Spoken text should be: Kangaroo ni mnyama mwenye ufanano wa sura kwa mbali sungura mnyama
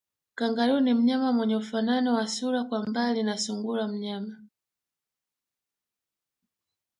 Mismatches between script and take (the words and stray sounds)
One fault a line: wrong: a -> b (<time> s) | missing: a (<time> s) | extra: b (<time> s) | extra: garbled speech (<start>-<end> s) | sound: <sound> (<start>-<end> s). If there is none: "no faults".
extra: na (3.2 s)